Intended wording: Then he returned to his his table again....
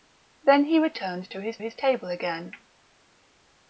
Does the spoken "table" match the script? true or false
true